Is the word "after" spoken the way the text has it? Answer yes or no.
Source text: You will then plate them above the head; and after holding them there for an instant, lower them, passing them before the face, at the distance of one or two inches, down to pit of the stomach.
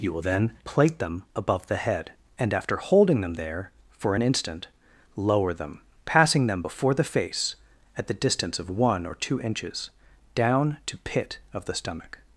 yes